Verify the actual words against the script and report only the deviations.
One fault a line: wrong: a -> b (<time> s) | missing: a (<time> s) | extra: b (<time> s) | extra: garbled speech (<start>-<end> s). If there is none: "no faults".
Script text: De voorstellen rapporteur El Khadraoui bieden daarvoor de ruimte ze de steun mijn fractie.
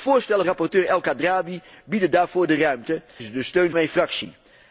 no faults